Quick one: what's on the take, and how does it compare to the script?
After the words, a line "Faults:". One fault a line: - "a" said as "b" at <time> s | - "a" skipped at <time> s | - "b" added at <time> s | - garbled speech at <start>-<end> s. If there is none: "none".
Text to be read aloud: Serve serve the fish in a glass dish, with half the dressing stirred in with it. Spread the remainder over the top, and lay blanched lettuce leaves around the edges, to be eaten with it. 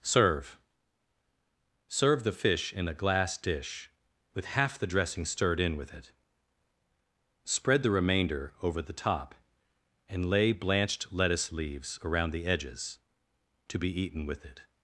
Serve serve the fish in a glass dish, with half the dressing stirred in with it. Spread the remainder over the top, and lay blanched lettuce leaves around the edges, to be eaten with it.
Faults:
none